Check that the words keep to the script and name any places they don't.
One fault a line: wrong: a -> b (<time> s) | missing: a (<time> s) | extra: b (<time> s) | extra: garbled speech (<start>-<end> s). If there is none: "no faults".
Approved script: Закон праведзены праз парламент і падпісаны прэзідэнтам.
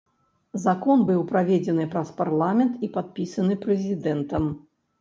extra: быў (1.1 s)